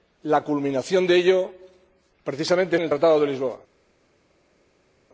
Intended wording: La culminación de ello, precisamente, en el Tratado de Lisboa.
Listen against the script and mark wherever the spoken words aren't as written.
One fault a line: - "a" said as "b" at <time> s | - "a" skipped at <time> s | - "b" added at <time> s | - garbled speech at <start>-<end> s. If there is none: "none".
none